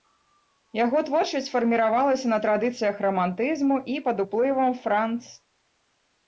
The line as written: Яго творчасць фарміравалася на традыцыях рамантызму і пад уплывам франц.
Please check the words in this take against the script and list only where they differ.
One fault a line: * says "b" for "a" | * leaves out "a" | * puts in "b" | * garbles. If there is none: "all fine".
all fine